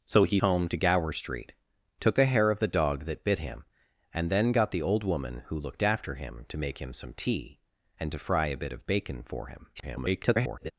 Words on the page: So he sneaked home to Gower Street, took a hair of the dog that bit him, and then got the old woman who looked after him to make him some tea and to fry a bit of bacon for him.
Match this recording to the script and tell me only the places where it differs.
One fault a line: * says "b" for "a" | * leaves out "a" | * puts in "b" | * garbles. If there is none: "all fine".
* leaves out "sneaked"
* garbles